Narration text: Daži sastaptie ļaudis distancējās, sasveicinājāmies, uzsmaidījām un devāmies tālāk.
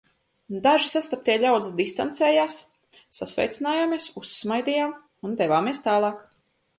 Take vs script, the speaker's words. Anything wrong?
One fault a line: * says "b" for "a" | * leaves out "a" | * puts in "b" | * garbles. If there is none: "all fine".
all fine